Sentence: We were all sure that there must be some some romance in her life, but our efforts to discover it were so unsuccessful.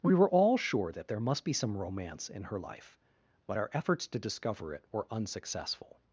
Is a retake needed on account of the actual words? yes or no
yes